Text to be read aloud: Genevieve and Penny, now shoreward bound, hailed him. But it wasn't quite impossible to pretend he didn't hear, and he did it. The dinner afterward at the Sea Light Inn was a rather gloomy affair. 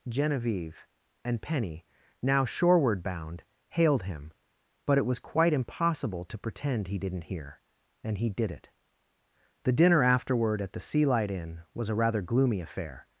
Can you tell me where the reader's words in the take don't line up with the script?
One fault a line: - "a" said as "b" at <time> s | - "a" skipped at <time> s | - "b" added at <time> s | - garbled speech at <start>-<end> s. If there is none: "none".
- "wasn't" said as "was" at 5.0 s